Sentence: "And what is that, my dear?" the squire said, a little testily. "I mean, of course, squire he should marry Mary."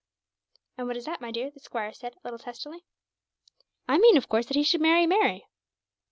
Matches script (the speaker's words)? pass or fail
fail